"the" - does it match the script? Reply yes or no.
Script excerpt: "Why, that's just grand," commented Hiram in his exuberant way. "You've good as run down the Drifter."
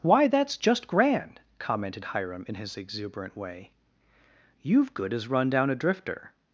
no